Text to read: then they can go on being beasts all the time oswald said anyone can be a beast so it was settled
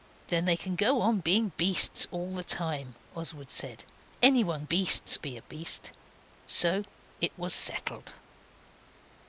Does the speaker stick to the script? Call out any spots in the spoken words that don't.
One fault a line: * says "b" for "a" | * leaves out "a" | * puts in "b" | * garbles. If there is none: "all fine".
* says "beasts" for "can"